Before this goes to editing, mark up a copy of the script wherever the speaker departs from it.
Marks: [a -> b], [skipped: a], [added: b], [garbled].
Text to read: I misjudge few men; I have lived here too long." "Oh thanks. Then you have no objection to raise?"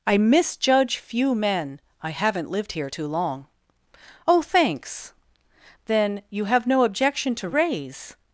I misjudge few men; I [have -> haven't] lived here too long." "Oh thanks. Then you have no objection to raise?"